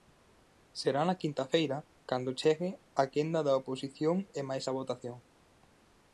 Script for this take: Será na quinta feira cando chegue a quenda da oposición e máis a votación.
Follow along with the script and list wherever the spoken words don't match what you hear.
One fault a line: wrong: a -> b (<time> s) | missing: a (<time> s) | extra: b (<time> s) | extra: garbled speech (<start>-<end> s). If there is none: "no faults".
no faults